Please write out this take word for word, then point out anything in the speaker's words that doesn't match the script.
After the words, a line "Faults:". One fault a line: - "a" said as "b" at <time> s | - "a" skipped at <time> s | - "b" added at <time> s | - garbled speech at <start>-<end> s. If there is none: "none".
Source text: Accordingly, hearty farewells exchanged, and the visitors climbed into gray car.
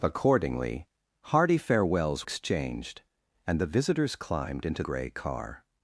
Accordingly, hearty farewells exchanged, and the visitors climbed into gray car.
Faults:
none